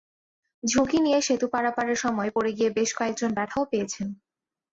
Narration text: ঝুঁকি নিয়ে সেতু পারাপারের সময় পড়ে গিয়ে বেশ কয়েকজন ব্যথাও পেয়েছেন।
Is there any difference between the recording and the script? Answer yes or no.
no